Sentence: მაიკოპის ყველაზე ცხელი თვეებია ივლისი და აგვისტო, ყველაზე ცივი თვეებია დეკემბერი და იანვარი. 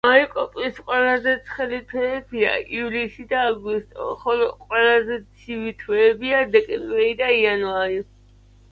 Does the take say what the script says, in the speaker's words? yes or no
no